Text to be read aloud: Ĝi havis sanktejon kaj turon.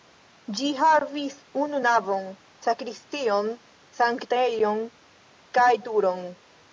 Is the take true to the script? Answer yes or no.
no